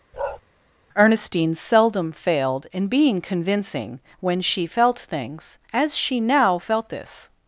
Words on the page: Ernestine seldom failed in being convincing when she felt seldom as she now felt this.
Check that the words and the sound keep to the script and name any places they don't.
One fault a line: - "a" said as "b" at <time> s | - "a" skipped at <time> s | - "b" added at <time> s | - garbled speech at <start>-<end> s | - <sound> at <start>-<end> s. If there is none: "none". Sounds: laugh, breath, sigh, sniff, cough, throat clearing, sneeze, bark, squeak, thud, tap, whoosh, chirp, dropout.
- bark at 0.1-0.4 s
- "seldom" said as "things" at 5.0 s